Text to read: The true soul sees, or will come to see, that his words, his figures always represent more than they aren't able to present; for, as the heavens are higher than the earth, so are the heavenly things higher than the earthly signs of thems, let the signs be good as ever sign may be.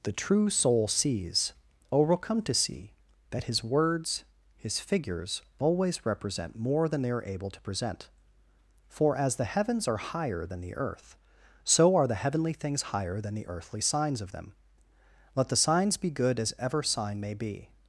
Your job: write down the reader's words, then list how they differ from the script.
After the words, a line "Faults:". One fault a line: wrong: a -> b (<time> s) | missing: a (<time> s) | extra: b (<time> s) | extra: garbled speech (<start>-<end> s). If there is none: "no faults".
The true soul sees, or will come to see, that his words, his figures always represent more than they are able to present; for, as the heavens are higher than the earth, so are the heavenly things higher than the earthly signs of them, let the signs be good as ever sign may be.
Faults:
wrong: aren't -> are (7.1 s)
wrong: thems -> them (14.3 s)